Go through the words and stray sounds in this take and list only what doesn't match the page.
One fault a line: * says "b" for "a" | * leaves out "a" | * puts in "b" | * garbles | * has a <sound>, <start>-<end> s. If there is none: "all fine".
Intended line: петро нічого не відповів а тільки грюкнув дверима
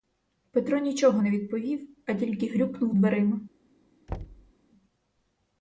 * has a thud, 4.1-4.5 s